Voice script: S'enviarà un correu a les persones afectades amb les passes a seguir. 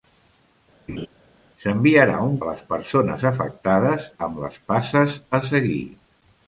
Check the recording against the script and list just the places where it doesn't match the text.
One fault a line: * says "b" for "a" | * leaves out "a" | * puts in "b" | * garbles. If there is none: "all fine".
* leaves out "correu"